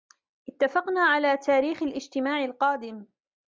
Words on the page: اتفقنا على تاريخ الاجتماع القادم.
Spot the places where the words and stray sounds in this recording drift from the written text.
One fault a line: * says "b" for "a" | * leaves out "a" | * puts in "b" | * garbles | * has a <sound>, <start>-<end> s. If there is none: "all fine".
all fine